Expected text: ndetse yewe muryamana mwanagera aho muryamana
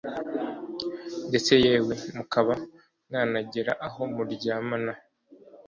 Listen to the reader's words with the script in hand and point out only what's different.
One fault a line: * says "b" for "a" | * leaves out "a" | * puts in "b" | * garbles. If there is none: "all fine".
* says "mukaba" for "muryamana"